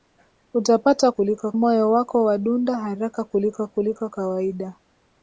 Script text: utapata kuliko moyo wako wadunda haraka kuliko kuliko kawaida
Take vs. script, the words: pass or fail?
pass